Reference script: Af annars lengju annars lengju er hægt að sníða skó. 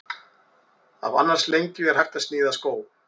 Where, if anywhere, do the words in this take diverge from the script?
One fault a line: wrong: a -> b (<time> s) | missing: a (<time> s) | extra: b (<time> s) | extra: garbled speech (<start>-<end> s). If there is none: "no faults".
missing: annars lengju (1.9 s)